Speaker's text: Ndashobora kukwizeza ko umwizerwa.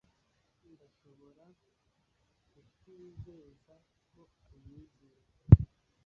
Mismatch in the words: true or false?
false